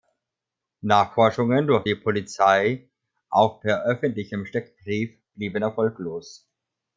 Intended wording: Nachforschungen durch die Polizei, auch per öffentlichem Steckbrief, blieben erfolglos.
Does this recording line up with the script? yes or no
yes